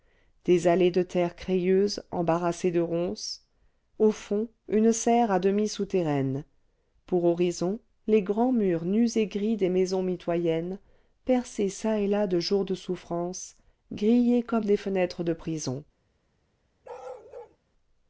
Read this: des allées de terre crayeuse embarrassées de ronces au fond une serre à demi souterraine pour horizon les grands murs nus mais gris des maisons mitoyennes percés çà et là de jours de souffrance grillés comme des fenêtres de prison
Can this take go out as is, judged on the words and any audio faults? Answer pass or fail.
fail